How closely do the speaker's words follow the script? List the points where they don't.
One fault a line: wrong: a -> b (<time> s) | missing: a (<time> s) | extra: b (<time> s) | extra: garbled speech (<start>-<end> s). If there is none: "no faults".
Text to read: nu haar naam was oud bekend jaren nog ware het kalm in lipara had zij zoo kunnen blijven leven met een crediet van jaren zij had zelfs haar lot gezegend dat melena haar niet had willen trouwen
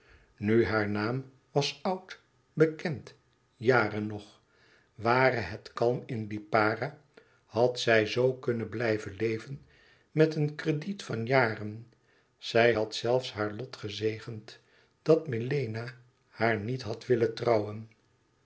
no faults